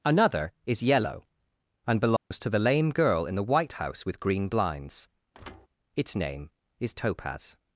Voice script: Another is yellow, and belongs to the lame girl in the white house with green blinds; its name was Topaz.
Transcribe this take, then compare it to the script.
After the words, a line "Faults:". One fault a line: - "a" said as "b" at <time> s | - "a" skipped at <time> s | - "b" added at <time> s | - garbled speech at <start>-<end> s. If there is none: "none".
Another is yellow, and belongs to the lame girl in the white house with green blinds; its name is Topaz.
Faults:
- "was" said as "is" at 6.8 s